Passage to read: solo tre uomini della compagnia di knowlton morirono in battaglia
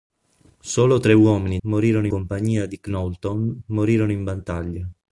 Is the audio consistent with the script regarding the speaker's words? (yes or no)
no